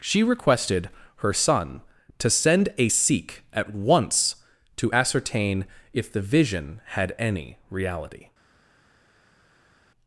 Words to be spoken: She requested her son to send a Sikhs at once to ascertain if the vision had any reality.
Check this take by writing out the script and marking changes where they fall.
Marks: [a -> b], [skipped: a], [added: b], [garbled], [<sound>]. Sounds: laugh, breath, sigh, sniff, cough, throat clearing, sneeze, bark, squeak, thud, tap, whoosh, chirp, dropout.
She requested her son to send a [Sikhs -> Sikh] at once to ascertain if the vision had any reality.